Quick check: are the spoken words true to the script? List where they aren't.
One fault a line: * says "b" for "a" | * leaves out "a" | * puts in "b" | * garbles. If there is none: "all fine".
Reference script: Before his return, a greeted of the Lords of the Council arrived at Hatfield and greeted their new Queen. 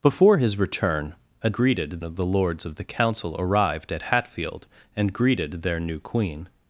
all fine